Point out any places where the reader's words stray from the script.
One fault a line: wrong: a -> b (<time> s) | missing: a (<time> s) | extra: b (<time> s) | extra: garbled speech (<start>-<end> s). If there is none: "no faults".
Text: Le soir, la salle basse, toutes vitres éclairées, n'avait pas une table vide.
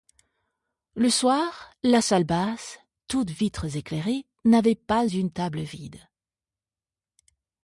no faults